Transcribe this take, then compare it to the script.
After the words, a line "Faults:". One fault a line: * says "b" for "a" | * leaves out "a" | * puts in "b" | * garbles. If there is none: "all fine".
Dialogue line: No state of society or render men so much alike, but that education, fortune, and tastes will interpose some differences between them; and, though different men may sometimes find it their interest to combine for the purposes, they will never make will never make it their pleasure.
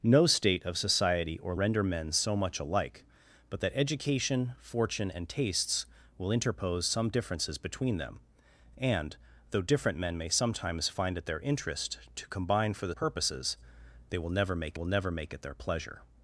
No state of society or render men so much alike, but that education, fortune, and tastes will interpose some differences between them; and, though different men may sometimes find it their interest to combine for the purposes, they will never make will never make it their pleasure.
Faults:
all fine